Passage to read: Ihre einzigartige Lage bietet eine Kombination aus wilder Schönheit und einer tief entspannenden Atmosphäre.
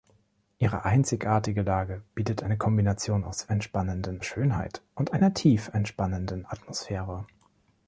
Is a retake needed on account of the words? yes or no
yes